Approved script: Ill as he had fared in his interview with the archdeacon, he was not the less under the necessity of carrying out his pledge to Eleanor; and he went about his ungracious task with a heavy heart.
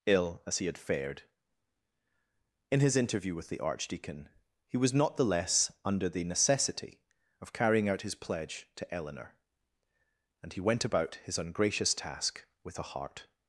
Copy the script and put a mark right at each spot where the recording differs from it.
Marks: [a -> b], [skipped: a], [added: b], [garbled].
Ill as he had fared in his interview with the archdeacon, he was not the less under the necessity of carrying out his pledge to Eleanor; and he went about his ungracious task with a [skipped: heavy] heart.